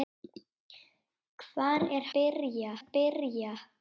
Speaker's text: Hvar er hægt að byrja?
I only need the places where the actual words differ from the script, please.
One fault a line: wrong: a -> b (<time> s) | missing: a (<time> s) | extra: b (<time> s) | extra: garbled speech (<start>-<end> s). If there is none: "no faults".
wrong: hægt -> byrja (2.2 s)